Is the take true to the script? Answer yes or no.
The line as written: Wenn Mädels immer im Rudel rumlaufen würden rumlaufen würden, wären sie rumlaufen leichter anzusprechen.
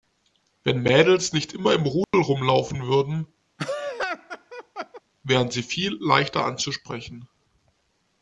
no